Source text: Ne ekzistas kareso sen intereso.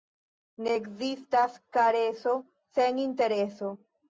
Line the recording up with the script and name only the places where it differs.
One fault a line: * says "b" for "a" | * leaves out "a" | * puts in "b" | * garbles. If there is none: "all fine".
all fine